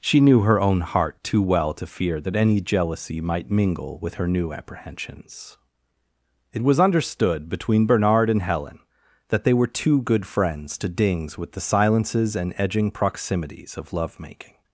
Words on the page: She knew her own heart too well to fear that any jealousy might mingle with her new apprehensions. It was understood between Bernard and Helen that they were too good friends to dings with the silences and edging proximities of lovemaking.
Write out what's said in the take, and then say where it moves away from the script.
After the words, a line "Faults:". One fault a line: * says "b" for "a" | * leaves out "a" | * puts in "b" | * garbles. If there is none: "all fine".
She knew her own heart too well to fear that any jealousy might mingle with her new apprehensions. It was understood between Bernard and Helen that they were too good friends to dings with the silences and edging proximities of lovemaking.
Faults:
all fine